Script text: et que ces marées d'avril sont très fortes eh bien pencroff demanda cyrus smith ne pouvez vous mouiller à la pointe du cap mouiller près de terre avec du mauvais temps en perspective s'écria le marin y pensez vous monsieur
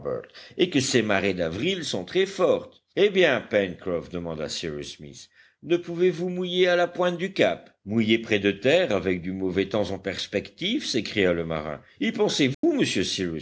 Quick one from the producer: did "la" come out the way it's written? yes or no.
yes